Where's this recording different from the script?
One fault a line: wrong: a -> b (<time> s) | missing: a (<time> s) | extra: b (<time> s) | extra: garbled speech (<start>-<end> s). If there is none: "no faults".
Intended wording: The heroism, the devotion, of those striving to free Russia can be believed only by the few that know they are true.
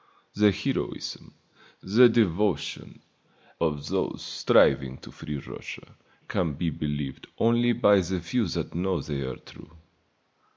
no faults